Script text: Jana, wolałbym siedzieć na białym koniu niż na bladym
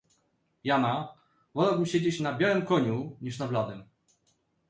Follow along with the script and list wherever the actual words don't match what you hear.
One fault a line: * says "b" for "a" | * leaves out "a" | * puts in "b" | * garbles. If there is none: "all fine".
all fine